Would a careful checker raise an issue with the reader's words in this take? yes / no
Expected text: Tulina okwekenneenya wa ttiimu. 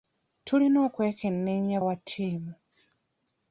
no